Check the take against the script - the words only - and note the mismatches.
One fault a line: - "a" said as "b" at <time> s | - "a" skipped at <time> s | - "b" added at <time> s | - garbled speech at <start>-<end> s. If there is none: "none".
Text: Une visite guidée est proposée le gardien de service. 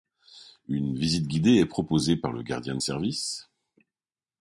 - "par" added at 2.1 s